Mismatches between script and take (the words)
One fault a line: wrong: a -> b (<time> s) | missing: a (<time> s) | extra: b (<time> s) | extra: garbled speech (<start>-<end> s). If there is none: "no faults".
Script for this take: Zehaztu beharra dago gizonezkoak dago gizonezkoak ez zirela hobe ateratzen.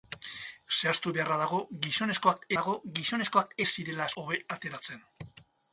no faults